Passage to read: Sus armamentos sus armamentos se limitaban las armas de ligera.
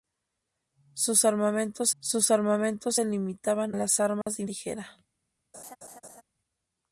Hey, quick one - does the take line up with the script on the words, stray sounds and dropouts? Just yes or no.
no